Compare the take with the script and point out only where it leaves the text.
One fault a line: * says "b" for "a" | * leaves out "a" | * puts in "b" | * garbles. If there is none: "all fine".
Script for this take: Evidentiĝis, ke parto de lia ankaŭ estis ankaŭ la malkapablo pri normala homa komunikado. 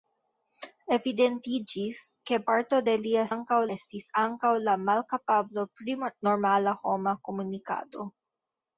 all fine